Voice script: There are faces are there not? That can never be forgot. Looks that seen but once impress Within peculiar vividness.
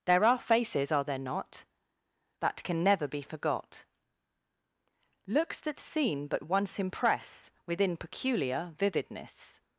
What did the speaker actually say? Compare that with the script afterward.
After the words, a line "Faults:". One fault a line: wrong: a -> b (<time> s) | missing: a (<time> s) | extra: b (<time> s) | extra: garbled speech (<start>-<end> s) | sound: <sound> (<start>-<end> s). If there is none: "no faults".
There are faces are there not? That can never be forgot. Looks that seen but once impress Within peculiar vividness.
Faults:
no faults